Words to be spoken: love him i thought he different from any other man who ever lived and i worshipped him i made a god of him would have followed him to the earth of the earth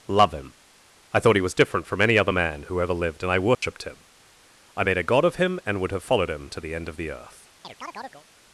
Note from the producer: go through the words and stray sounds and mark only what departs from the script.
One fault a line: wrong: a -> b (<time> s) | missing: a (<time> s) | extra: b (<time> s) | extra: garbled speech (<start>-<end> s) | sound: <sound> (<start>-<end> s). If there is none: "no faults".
extra: was (1.4 s)
sound: dropout (3.5-3.6 s)
extra: and (5.7 s)
wrong: earth -> end (6.7 s)
sound: chirp (7.6-8.3 s)